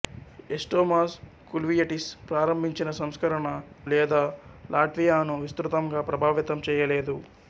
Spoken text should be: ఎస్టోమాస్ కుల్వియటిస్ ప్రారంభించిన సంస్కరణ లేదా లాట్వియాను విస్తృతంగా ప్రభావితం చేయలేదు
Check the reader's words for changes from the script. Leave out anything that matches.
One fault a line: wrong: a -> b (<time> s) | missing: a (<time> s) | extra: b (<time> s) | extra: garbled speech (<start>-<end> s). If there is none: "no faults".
no faults